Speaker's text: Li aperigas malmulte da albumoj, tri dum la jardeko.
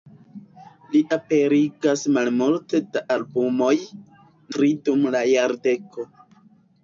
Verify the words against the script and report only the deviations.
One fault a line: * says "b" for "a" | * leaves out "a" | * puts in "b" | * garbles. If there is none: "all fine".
all fine